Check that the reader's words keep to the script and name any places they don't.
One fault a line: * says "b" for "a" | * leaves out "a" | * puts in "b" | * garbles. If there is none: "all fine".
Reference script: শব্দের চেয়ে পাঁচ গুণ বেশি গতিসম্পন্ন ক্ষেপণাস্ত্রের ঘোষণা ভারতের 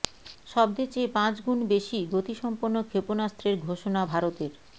all fine